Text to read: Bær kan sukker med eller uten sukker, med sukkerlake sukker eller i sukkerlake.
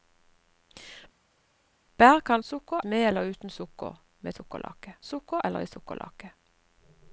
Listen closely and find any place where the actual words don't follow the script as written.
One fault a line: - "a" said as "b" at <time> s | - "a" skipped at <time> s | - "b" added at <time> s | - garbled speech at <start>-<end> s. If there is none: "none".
none